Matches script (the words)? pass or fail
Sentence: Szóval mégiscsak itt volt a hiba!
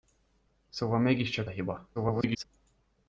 fail